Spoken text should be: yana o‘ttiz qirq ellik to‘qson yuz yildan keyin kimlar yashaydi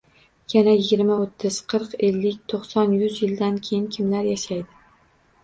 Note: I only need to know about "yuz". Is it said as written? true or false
true